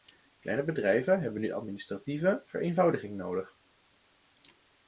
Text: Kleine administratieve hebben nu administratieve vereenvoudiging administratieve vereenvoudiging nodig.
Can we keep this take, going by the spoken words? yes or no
no